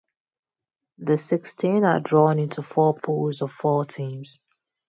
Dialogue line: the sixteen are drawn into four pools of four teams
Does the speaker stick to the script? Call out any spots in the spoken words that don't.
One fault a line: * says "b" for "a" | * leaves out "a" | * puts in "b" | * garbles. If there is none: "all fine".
all fine